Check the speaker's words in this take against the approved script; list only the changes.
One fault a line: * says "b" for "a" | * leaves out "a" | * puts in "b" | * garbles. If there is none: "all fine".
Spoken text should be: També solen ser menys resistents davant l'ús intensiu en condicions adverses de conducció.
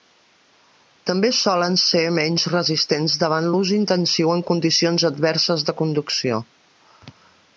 all fine